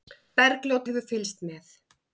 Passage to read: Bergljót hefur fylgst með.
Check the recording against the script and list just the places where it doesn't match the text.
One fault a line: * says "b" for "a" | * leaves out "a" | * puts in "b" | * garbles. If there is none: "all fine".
all fine